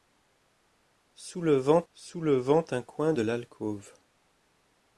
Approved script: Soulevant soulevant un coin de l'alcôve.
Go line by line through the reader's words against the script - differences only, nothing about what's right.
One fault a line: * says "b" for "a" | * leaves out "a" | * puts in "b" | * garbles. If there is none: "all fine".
all fine